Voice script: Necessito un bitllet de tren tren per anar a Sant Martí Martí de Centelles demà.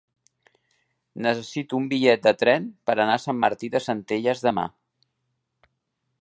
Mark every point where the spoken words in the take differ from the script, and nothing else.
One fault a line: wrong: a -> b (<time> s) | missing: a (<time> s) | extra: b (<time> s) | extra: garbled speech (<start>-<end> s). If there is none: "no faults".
missing: tren (2.6 s)
missing: Martí (3.7 s)